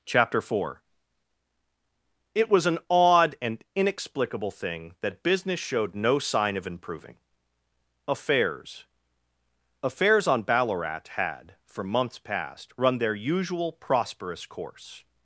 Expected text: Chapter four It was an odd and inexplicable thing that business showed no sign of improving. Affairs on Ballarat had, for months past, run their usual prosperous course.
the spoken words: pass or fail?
fail